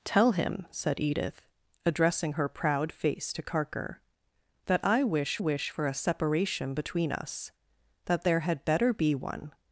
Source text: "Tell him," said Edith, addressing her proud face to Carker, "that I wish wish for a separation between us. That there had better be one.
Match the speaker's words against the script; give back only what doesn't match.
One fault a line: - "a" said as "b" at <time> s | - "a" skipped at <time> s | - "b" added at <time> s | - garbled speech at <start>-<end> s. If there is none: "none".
none